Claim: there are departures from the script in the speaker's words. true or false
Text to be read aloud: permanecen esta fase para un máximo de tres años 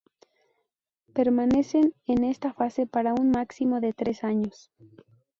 true